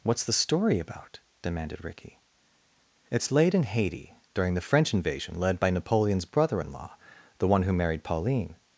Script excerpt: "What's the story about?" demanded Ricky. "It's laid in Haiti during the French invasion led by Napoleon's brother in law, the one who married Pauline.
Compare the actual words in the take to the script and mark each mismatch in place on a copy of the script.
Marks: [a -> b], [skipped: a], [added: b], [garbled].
"What's the story about?" demanded Ricky. "It's laid in Haiti during the French invasion led by Napoleon's brother in law, the one who married Pauline.